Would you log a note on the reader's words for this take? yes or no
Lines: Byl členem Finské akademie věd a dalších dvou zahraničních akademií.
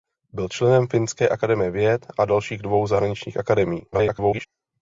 yes